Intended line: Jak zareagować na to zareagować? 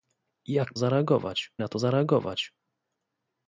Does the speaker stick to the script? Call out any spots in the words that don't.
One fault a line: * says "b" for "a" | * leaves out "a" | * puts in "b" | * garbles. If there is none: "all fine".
all fine